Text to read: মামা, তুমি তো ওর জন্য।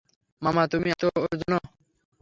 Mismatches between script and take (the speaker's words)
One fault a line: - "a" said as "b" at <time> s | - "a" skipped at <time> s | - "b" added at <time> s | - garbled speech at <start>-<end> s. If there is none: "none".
none